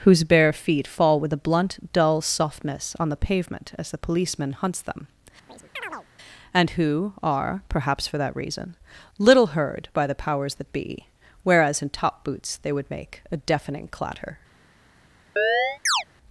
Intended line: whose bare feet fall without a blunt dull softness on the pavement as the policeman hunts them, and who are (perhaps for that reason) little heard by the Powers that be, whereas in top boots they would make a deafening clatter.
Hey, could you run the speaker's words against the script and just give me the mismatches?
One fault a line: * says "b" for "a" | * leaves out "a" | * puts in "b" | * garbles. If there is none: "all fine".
* says "with" for "without"